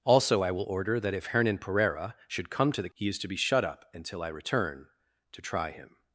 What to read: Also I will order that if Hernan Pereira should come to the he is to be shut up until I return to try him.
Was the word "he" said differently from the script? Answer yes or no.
no